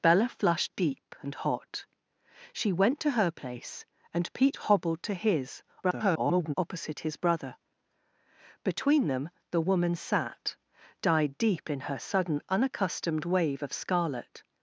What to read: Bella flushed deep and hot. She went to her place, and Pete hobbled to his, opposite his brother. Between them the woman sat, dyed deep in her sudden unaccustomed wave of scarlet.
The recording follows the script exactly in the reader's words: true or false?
false